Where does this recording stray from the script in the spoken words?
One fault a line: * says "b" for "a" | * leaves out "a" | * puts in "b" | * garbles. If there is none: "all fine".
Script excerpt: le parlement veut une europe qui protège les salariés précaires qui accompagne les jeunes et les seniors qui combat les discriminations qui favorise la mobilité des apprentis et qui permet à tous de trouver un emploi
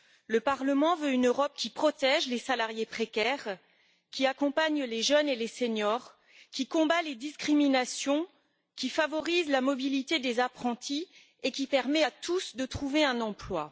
all fine